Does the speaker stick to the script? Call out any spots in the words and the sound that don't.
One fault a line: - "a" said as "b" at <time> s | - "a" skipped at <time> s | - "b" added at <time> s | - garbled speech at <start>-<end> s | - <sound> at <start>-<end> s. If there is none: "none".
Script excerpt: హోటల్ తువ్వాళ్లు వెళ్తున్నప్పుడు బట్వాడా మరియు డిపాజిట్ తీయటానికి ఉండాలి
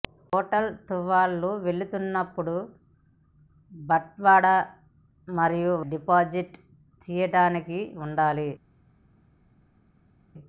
none